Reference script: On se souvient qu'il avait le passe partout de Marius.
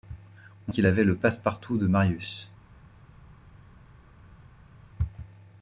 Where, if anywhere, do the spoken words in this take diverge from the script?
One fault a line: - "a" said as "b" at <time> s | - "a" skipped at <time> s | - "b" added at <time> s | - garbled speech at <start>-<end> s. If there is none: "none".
- "se souvient" skipped at 0.7 s